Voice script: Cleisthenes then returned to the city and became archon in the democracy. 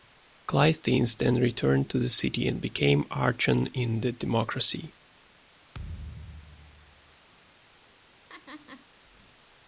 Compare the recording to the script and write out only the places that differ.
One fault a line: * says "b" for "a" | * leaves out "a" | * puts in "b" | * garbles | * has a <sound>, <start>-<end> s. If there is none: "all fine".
* has a thud, 5.7-7.2 s
* has a laugh, 8.3-8.9 s